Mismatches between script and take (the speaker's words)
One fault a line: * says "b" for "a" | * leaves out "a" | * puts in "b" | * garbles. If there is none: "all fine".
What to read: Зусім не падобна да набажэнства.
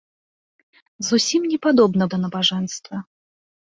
all fine